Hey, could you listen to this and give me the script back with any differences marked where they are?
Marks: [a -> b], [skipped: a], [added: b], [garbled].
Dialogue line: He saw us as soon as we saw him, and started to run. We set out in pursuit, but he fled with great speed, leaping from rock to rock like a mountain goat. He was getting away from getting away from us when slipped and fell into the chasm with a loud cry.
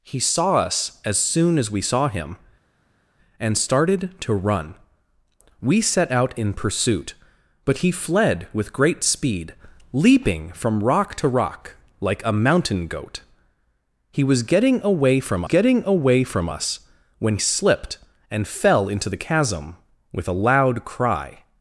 He saw us as soon as we saw him, and started to run. We set out in pursuit, but he fled with great speed, leaping from rock to rock like a mountain goat. He was getting away from getting away from us when slipped and fell into the chasm with a loud cry.